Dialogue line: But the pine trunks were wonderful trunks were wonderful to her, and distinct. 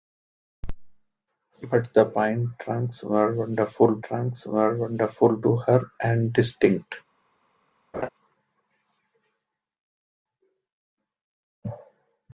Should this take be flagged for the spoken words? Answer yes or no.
no